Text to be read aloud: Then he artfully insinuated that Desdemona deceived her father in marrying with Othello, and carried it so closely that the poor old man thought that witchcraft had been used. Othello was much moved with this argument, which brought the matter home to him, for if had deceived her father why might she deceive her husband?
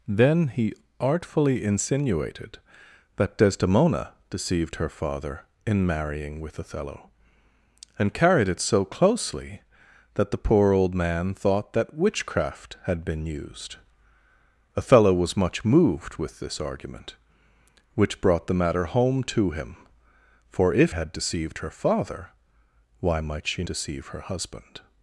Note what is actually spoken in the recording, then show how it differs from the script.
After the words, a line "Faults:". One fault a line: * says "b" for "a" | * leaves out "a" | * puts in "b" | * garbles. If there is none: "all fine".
Then he artfully insinuated that Desdemona deceived her father in marrying with Othello, and carried it so closely that the poor old man thought that witchcraft had been used. Othello was much moved with this argument, which brought the matter home to him, for if had deceived her father why might she deceive her husband?
Faults:
all fine